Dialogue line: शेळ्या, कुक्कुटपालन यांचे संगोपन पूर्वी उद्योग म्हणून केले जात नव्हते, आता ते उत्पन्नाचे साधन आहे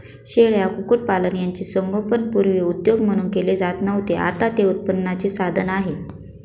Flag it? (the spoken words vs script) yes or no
no